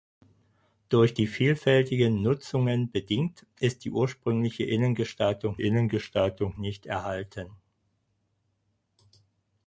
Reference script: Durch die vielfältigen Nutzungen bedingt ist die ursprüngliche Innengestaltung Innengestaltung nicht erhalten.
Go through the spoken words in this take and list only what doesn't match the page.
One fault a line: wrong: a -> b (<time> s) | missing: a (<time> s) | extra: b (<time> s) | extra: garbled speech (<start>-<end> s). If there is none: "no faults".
no faults